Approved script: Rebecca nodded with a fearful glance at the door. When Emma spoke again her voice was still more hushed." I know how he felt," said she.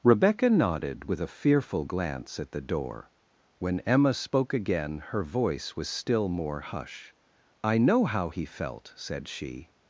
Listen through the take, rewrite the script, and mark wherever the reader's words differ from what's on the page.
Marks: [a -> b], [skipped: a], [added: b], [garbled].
Rebecca nodded with a fearful glance at the door. When Emma spoke again her voice was still more [hushed." -> hush] I know how he felt," said she.